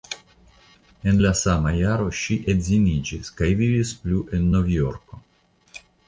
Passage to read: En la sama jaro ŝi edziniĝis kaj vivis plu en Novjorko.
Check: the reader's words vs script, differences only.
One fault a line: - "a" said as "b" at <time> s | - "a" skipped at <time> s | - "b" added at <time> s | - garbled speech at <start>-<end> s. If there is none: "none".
none